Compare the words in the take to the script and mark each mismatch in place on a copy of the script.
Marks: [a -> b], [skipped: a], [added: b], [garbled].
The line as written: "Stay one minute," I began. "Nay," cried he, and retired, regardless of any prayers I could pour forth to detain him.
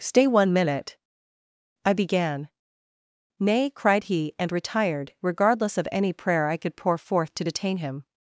"Stay one minute," I began. "Nay," cried he, and retired, regardless of any [prayers -> prayer] I could pour forth to detain him.